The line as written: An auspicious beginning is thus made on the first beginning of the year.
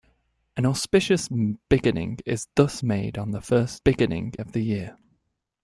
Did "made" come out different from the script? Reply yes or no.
no